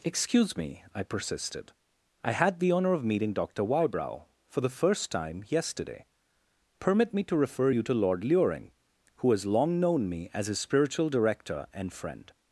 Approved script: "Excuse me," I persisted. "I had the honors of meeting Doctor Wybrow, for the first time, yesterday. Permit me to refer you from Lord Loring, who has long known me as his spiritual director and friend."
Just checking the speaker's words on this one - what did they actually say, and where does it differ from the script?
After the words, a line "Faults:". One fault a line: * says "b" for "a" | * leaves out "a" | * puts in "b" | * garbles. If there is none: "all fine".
"Excuse me," I persisted. "I had the honor of meeting Doctor Wybrow, for the first time, yesterday. Permit me to refer you to Lord Loring, who has long known me as his spiritual director and friend."
Faults:
* says "honor" for "honors"
* says "to" for "from"